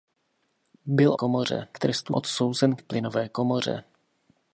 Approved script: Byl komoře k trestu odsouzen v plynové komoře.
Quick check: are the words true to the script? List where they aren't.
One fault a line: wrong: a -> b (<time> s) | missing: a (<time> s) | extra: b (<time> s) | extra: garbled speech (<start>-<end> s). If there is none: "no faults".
no faults